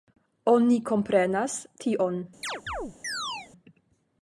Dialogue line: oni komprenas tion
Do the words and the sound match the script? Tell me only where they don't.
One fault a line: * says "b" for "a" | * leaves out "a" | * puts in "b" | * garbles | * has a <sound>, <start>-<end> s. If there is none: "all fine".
* has a chirp, 2.4-3.5 s